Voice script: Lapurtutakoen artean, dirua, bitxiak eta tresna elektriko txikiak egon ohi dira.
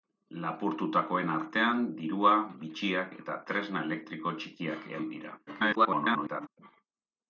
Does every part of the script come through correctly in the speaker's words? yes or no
no